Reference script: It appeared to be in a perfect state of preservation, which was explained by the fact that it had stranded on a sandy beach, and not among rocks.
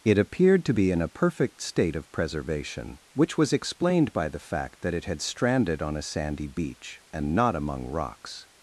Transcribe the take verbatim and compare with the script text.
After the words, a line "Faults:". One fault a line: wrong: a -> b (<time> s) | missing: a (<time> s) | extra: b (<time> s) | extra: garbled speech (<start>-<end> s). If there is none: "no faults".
It appeared to be in a perfect state of preservation, which was explained by the fact that it had stranded on a sandy beach, and not among rocks.
Faults:
no faults